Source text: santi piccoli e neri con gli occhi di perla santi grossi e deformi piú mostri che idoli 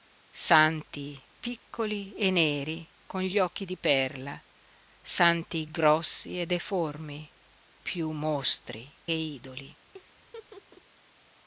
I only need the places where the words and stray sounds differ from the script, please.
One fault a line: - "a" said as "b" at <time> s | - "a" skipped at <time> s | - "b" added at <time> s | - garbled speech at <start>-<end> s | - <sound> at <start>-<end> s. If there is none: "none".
- "che" skipped at 8.9 s
- laugh at 9.9-10.8 s